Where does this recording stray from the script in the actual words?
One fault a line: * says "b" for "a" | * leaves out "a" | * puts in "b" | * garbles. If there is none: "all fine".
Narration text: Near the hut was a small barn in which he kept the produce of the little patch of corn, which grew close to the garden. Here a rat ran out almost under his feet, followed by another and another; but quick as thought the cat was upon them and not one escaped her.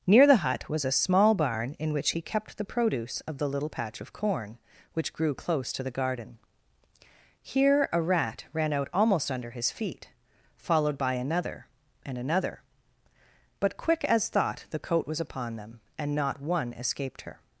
* says "coat" for "cat"